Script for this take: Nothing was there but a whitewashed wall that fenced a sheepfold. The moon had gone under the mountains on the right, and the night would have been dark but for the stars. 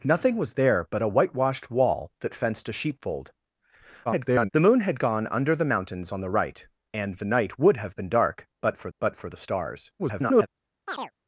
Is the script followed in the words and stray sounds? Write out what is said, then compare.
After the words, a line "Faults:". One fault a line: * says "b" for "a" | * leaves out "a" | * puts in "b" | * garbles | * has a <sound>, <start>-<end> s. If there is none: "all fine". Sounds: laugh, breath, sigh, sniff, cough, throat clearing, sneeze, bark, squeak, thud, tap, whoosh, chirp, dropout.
Nothing was there but a whitewashed wall that fenced a sheepfold. [garbled] The moon had gone under the mountains on the right, and the night would have been dark but for but for the stars. [garbled]
Faults:
* garbles
* puts in "but for"
* garbles
* has a chirp, 10.9-11.1 s